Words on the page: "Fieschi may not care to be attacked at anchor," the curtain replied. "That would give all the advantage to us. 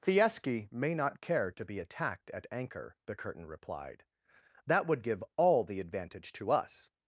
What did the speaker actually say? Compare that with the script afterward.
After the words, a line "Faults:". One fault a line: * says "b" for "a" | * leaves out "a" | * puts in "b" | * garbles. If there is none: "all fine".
"Fieschi may not care to be attacked at anchor," the curtain replied. "That would give all the advantage to us.
Faults:
all fine